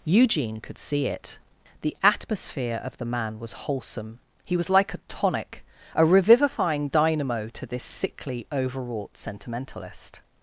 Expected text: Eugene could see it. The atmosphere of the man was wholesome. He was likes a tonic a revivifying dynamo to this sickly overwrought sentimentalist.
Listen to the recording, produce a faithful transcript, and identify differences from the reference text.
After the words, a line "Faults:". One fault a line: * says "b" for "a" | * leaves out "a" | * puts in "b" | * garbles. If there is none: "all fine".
Eugene could see it. The atmosphere of the man was wholesome. He was like a tonic a revivifying dynamo to this sickly overwrought sentimentalist.
Faults:
* says "like" for "likes"